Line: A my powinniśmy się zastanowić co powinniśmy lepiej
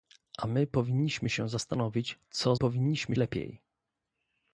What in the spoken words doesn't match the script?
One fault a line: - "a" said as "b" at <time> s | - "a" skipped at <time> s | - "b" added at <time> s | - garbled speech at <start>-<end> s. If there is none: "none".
none